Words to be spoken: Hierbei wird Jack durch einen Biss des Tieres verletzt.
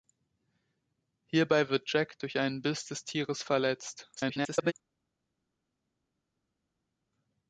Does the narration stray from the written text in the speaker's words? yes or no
yes